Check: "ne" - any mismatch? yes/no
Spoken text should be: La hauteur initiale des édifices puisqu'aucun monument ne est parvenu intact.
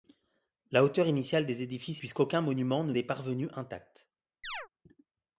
no